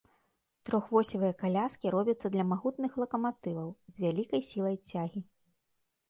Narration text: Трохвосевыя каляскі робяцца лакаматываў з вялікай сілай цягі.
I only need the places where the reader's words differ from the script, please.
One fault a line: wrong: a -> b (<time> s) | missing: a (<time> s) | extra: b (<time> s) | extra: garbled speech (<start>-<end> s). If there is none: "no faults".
extra: для магутных (2.4 s)